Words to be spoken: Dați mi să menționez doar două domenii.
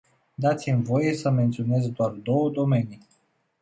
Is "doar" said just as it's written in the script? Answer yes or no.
yes